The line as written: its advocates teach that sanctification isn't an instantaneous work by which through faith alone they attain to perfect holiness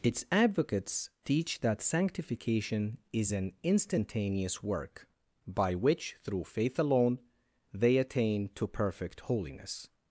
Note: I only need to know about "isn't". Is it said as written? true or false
false